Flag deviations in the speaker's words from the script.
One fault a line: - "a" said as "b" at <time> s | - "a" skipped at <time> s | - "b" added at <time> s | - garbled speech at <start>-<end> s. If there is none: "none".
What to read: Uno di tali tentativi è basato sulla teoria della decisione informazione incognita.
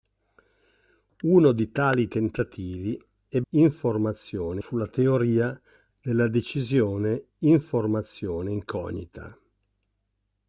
- "basato" said as "informazione" at 3.5 s